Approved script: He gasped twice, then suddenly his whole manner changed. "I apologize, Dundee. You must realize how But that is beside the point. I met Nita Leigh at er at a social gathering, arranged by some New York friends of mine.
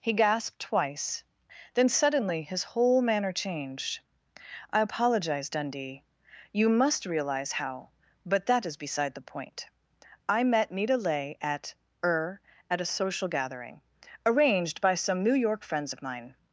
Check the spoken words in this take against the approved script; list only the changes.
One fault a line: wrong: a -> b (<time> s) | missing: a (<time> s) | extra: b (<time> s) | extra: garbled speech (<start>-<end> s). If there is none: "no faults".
no faults